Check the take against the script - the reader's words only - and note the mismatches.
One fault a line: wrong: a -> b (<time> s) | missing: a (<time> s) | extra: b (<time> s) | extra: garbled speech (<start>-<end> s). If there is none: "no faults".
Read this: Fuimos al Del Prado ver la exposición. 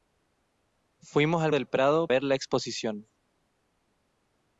no faults